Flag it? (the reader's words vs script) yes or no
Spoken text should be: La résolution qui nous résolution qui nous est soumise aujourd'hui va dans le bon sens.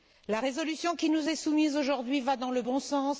yes